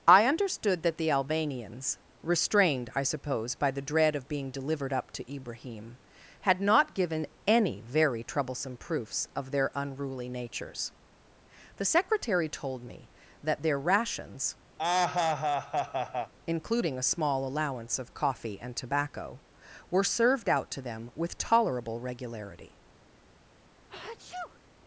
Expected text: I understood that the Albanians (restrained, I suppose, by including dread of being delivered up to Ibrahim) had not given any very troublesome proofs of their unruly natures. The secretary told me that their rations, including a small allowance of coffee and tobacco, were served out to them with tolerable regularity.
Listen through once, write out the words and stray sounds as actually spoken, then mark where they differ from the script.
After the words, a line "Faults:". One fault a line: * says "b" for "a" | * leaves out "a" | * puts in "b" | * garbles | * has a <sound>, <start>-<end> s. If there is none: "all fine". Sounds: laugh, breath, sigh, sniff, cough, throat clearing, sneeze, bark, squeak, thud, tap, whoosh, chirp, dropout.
I understood that the Albanians (restrained, I suppose, by the dread of being delivered up to Ibrahim) had not given any very troublesome proofs of their unruly natures. The secretary told me that their rations, including a small allowance of coffee and tobacco, were served out to them with tolerable regularity.
Faults:
* says "the" for "including"
* has a laugh, 14.8-16.3 s
* has a sneeze, 23.9-24.6 s